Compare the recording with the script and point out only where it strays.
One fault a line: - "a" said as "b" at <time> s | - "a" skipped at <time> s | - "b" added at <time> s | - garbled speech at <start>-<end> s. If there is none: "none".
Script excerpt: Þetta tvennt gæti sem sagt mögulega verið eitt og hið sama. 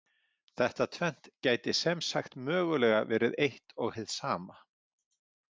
none